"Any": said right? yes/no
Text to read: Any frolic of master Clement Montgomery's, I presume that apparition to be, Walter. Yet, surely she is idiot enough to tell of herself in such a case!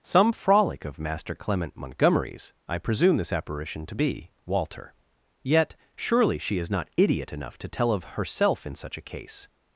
no